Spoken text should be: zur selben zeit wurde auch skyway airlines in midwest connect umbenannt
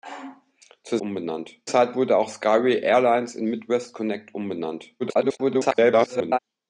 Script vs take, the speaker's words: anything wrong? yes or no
yes